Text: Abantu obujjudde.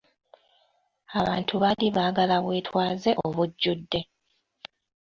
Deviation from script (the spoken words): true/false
true